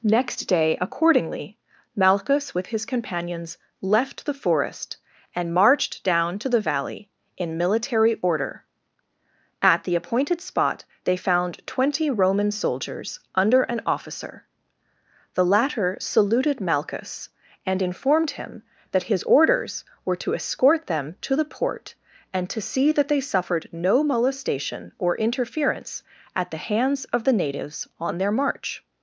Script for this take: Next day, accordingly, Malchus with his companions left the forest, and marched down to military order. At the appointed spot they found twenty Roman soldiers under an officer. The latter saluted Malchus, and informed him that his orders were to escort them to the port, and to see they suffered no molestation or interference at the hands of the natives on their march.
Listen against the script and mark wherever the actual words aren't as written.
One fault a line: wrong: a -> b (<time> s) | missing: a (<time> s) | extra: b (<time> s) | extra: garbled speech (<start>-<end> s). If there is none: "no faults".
extra: the valley in (6.5 s)
extra: that (22.9 s)